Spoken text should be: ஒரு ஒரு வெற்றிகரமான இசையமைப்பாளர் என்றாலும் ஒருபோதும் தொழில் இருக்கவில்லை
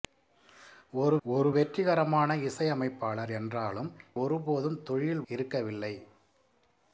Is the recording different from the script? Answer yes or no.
no